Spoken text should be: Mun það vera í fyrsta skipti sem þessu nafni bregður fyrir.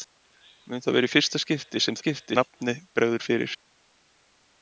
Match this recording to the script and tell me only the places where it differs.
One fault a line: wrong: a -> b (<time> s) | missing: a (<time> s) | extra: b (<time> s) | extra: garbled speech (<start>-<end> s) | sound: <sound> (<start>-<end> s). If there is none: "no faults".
wrong: þessu -> skipti (2.0 s)